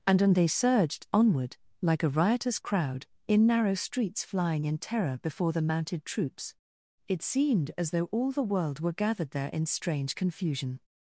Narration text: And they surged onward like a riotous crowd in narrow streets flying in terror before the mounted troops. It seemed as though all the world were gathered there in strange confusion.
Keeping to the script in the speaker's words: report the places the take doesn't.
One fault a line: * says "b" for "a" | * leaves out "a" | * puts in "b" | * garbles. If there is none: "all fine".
* puts in "and"